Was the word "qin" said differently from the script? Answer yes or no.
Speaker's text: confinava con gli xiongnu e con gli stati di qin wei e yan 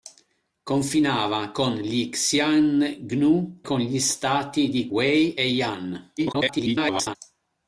yes